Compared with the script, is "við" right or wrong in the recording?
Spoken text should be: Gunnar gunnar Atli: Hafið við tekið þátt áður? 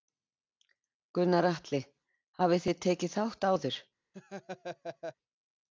wrong